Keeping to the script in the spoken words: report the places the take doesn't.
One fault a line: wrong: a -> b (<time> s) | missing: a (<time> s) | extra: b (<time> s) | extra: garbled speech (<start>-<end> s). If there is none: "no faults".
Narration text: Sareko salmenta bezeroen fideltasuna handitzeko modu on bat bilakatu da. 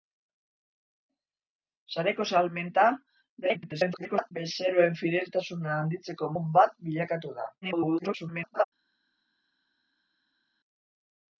extra: garbled speech (3.4-4.3 s)
missing: modu (6.3 s)
extra: garbled speech (7.6-8.6 s)